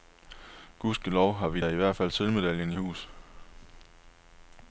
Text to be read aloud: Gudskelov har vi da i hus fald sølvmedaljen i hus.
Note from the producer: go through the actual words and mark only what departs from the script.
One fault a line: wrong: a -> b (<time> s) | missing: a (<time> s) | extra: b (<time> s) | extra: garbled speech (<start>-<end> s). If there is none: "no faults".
wrong: hus -> hvert (1.7 s)